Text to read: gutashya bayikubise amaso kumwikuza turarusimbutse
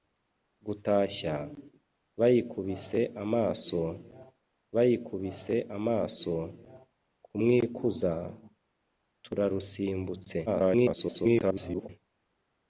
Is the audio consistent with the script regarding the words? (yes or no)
no